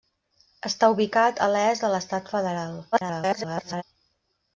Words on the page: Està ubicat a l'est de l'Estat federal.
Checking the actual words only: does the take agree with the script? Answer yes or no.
no